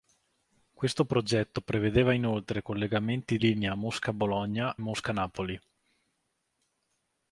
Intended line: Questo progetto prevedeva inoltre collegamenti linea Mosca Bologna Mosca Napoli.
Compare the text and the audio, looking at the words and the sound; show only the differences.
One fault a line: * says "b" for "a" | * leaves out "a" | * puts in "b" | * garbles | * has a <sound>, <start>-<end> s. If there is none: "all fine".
all fine